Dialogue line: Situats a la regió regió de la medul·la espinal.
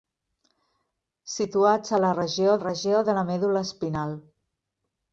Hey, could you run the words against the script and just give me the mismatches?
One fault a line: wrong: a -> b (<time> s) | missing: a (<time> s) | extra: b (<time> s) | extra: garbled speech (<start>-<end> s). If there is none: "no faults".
no faults